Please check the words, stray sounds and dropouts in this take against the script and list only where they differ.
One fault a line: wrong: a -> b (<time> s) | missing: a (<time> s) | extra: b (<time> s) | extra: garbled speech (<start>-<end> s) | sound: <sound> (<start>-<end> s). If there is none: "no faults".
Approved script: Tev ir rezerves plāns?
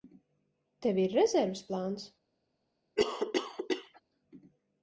sound: cough (3.0-4.0 s)